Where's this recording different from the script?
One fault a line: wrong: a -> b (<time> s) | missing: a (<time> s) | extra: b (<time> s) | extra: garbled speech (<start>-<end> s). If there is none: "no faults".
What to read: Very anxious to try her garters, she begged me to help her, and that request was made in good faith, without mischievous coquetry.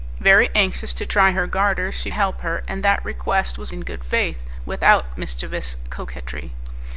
missing: begged me to (2.1 s)
missing: made (3.7 s)